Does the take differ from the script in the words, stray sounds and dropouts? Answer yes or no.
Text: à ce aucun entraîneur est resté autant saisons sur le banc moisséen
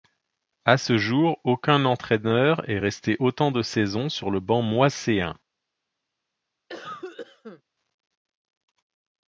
yes